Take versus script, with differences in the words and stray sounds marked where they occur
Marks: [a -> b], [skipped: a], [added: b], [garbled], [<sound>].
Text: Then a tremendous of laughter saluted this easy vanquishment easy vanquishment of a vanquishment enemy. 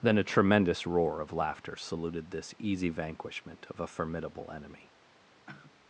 Then a tremendous [added: roar] of laughter saluted this easy vanquishment [skipped: easy vanquishment] of a [vanquishment -> formidable] enemy. [sigh]